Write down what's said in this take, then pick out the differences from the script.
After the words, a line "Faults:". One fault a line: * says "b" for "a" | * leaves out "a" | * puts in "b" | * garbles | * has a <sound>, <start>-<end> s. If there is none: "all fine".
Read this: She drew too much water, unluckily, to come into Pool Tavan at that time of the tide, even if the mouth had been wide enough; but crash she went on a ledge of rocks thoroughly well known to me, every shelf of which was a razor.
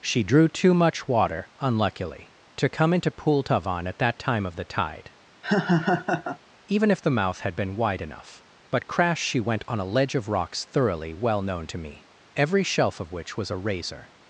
She drew too much water, unluckily, to come into Pool Tavan at that time of the tide, even if the mouth had been wide enough; but crash she went on a ledge of rocks thoroughly well known to me, every shelf of which was a razor.
Faults:
* has a laugh, 5.4-6.4 s